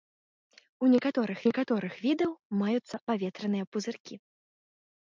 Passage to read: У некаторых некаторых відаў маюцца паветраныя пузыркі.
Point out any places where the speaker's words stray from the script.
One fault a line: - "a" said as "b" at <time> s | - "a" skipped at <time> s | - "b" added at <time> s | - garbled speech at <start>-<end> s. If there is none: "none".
none